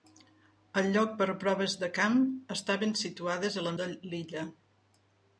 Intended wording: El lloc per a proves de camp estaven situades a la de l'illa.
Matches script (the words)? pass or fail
pass